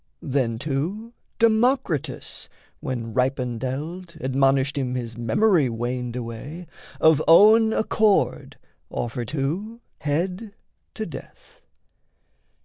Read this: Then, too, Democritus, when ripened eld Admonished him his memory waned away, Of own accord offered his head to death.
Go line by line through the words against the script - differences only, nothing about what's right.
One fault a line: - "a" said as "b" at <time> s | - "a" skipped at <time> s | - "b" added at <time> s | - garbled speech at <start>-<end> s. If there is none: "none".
- "his" said as "too" at 9.2 s